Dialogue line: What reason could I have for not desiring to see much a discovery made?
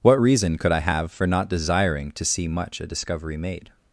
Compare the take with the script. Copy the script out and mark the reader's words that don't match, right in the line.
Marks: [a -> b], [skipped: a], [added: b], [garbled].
What reason could I have for not desiring to see much a discovery made?